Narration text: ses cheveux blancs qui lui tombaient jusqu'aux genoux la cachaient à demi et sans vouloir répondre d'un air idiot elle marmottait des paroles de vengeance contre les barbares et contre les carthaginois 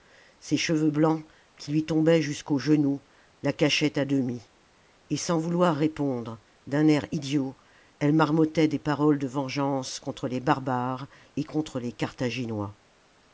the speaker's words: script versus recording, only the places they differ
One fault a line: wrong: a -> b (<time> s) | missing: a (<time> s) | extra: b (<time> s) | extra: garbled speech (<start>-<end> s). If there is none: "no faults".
no faults